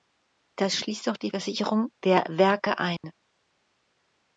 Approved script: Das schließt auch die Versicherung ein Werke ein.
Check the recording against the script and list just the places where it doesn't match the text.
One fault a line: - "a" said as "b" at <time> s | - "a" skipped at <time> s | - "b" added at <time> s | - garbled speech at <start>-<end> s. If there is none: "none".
- "ein" said as "der" at 2.0 s